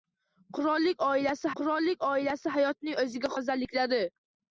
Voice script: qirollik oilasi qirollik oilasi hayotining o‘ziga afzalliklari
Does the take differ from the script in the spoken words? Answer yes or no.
no